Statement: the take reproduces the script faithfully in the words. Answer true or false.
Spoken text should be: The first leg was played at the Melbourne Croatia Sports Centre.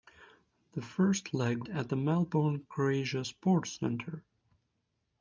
false